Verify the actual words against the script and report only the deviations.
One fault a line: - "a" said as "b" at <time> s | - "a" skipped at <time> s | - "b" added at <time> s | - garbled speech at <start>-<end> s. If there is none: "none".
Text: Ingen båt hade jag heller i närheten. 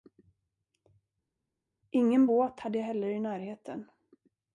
none